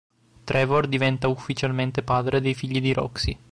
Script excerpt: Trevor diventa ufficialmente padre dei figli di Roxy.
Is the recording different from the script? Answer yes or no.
no